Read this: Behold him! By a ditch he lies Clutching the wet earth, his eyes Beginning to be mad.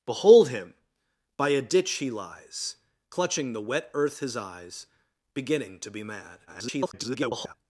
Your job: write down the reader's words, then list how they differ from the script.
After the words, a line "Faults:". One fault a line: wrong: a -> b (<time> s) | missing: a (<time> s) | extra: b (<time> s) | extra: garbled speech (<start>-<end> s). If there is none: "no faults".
Behold him! By a ditch he lies Clutching the wet earth, his eyes Beginning to be mad. [garbled]
Faults:
extra: garbled speech (6.5-7.5 s)